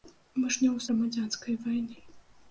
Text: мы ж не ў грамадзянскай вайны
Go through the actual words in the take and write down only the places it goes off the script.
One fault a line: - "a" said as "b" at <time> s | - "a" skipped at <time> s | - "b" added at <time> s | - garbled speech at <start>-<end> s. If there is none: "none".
none